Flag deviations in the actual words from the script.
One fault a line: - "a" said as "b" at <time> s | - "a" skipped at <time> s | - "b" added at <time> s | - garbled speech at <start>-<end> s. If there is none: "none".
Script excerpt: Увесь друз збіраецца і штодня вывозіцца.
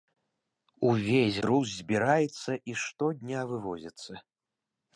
none